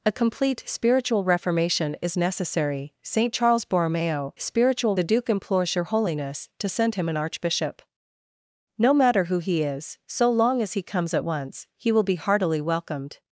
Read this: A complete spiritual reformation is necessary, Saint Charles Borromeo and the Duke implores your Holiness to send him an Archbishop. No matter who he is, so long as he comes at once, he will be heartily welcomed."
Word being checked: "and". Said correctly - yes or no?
no